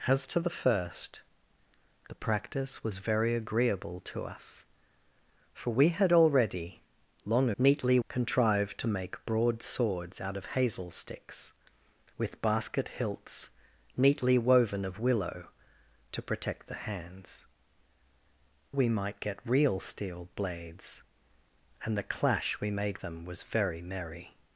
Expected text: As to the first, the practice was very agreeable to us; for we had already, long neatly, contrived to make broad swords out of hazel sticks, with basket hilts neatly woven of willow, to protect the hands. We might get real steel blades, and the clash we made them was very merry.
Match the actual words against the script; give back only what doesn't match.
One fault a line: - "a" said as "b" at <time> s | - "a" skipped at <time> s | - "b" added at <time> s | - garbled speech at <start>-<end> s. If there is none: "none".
none